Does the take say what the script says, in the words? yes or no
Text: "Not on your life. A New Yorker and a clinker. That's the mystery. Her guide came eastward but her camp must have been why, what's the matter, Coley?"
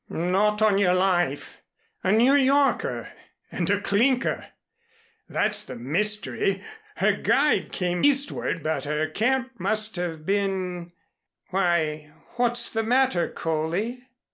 yes